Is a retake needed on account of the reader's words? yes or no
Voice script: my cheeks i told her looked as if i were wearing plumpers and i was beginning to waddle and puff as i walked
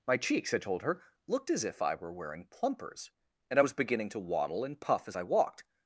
no